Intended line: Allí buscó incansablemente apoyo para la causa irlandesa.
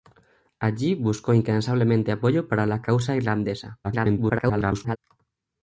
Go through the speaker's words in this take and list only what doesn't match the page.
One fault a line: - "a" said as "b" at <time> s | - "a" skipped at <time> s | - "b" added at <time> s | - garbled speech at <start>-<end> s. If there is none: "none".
- garbled speech at 3.8-5.0 s